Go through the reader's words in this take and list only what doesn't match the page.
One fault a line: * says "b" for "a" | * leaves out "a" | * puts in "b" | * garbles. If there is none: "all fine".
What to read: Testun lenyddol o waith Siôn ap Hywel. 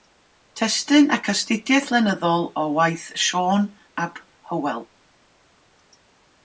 * puts in "ac astudiaeth"